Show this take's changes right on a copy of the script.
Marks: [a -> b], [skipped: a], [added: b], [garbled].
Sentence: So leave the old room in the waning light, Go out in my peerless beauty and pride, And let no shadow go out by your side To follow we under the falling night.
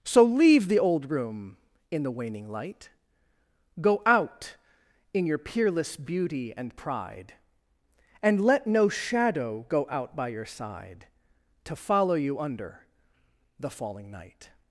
So leave the old room in the waning light, Go out in [my -> your] peerless beauty and pride, And let no shadow go out by your side To follow [we -> you] under the falling night.